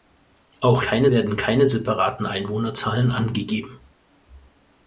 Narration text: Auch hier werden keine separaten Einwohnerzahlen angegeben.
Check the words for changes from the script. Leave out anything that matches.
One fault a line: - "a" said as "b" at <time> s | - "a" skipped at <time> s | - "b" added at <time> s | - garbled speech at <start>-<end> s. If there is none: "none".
- "hier" said as "keine" at 0.8 s